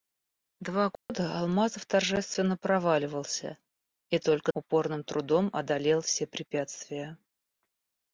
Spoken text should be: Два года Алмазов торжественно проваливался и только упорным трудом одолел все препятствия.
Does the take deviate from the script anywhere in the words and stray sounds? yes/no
yes